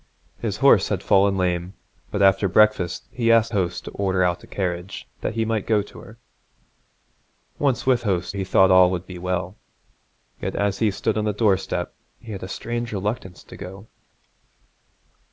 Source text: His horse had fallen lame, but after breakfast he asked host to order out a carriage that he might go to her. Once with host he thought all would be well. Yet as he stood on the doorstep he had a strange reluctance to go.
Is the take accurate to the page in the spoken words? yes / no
yes